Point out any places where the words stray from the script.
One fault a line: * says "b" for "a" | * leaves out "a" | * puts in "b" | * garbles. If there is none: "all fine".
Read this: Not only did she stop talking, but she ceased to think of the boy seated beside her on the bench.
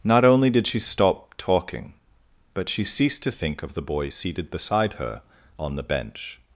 all fine